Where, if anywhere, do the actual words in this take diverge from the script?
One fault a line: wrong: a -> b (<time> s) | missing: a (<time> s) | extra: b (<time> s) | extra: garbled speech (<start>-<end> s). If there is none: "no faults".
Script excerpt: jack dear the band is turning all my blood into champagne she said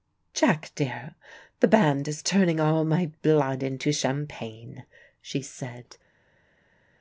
no faults